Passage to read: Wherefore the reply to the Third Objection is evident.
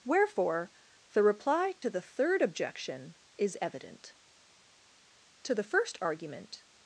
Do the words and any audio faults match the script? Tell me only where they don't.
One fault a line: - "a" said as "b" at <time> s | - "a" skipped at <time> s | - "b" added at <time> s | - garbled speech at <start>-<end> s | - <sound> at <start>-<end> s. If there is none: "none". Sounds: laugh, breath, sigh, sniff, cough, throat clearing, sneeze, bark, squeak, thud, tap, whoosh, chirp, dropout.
- dropout at 1.8-1.8 s
- "To the first argument" added at 5.4 s